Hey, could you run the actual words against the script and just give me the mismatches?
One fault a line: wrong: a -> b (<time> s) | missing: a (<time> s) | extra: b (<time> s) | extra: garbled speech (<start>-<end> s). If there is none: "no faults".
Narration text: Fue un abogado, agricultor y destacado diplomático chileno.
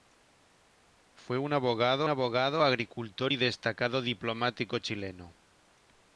extra: abogado (2.1 s)